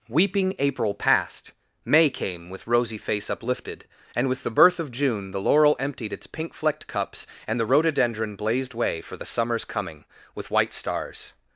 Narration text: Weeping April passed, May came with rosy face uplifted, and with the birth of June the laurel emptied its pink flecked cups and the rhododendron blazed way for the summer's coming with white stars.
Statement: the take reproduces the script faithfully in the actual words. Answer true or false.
true